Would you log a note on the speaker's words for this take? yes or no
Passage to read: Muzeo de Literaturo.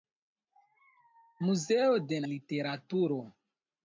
no